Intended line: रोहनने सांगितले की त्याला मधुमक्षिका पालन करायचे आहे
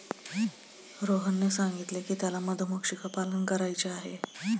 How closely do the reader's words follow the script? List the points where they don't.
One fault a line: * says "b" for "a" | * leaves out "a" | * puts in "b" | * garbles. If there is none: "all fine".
all fine